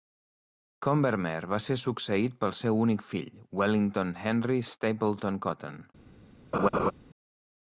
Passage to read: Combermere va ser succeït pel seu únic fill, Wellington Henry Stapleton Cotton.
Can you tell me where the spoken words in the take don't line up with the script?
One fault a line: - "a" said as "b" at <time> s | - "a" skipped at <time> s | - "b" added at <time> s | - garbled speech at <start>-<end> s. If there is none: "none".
none